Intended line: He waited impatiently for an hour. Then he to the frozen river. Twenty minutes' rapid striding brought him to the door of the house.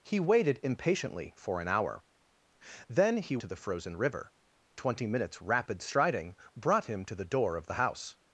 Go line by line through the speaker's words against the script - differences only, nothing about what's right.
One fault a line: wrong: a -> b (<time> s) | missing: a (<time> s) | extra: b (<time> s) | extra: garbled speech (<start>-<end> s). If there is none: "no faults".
no faults